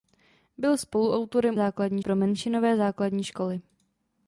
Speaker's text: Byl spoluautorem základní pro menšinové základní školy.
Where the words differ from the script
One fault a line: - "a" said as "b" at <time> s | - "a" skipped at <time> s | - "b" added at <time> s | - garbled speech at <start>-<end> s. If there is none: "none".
none